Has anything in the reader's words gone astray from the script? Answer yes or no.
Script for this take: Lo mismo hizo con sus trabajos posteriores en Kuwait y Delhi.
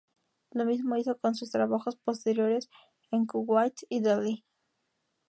no